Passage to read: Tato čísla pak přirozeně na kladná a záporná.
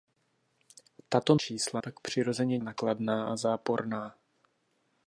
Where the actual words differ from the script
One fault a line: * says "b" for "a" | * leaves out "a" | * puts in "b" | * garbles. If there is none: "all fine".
all fine